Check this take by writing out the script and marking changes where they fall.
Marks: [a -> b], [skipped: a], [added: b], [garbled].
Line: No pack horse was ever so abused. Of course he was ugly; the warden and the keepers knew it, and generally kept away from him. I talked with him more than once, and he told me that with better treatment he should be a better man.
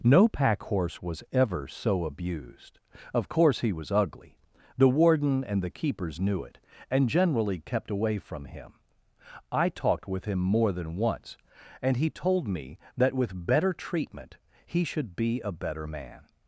No pack horse was ever so abused. Of course he was ugly; the warden and the keepers knew it, and generally kept away from him. I talked with him more than once, and he told me that with better treatment he should be a better man.